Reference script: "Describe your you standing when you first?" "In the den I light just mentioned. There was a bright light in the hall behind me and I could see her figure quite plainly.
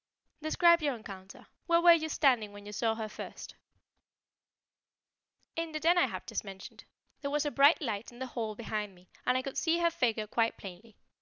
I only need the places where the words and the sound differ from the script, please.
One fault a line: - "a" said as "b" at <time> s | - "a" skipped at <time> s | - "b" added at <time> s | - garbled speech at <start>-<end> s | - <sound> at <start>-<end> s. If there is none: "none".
- "encounter Where were" added at 0.9 s
- "saw her" added at 2.7 s
- "light" said as "have" at 6.1 s